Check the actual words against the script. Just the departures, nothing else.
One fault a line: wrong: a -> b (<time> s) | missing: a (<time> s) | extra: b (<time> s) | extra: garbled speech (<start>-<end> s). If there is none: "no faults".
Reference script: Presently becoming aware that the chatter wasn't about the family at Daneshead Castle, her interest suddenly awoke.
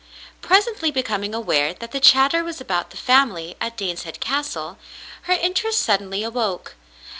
wrong: wasn't -> was (2.4 s)